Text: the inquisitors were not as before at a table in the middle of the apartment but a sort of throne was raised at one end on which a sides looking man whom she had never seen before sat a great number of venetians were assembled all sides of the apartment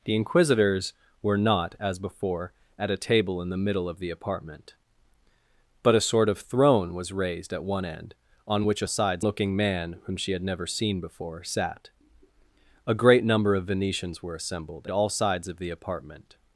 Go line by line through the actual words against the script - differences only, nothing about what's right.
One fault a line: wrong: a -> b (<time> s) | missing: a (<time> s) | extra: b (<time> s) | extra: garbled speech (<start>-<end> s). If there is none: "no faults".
no faults